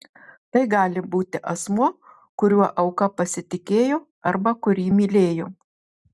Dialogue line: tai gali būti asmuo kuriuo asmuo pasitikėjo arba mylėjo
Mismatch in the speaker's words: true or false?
true